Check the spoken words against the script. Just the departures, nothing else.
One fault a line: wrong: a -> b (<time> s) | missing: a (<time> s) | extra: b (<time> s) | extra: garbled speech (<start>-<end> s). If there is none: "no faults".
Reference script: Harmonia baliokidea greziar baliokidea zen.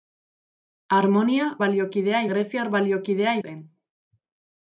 no faults